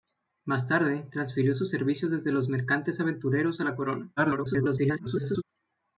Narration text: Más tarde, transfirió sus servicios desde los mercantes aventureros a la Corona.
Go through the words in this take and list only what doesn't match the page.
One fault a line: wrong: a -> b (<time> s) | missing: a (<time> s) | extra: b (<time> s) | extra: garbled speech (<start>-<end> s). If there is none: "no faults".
extra: garbled speech (4.2-5.4 s)